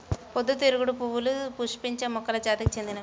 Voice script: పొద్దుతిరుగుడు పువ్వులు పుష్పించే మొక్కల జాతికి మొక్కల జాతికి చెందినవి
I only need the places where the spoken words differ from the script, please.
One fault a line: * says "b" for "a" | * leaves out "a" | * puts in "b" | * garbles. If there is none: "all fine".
* leaves out "మొక్కల జాతికి"